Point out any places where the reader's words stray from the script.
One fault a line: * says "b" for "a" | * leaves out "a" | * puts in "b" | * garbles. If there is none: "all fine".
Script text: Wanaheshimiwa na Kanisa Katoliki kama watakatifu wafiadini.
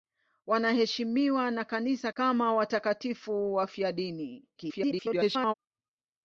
* leaves out "Katoliki"
* garbles